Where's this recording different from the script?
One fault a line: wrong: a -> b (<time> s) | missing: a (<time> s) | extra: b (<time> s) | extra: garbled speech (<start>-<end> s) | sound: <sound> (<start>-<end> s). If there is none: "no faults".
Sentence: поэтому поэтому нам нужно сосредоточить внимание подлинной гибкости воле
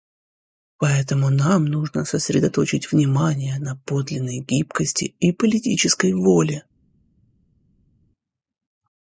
missing: поэтому (1.3 s)
extra: на (3.6 s)
extra: и политической (5.2 s)